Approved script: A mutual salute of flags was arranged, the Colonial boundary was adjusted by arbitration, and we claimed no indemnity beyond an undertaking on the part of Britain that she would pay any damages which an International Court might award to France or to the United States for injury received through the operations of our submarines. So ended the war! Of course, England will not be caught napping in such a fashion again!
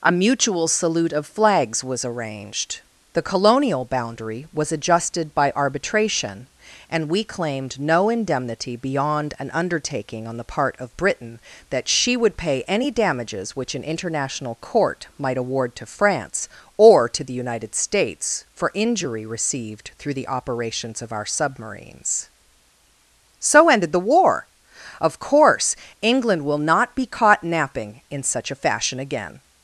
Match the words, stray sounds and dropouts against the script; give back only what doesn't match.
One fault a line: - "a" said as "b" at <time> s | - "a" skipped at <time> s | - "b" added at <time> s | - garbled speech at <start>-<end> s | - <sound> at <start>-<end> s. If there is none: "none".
none